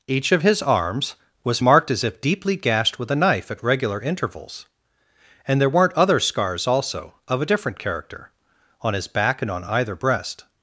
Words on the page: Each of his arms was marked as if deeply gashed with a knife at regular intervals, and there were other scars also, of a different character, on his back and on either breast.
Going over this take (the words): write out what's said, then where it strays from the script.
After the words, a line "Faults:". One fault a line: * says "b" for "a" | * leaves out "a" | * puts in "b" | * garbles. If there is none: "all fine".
Each of his arms was marked as if deeply gashed with a knife at regular intervals, and there weren't other scars also, of a different character, on his back and on either breast.
Faults:
* says "weren't" for "were"